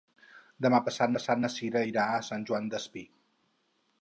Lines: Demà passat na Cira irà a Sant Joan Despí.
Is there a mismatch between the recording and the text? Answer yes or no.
yes